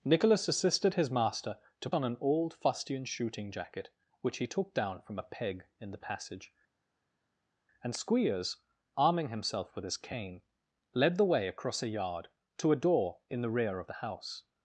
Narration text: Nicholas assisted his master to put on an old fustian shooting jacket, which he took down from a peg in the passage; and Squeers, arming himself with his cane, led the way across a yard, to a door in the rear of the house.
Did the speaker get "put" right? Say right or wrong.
wrong